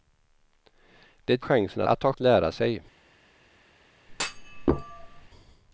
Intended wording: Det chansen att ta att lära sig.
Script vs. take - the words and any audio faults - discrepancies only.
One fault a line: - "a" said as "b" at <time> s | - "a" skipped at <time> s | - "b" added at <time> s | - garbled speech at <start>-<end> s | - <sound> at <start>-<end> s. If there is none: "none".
- thud at 4.1-5.3 s